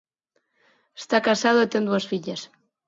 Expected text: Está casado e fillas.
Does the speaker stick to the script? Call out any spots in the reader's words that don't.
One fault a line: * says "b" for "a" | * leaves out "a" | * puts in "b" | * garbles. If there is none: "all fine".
* puts in "ten dúas"